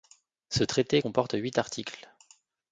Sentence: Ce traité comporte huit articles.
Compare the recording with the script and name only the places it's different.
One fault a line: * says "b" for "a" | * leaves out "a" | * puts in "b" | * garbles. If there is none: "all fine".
all fine